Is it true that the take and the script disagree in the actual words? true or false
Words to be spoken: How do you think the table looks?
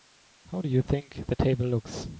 false